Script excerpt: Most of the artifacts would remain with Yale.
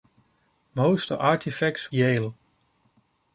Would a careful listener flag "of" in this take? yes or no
yes